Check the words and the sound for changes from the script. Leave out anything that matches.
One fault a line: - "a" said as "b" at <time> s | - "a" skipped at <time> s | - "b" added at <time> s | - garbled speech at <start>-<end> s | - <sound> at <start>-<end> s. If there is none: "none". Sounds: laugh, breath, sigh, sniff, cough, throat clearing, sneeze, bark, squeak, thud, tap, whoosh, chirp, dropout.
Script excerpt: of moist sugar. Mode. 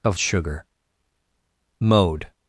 - "moist" skipped at 0.2 s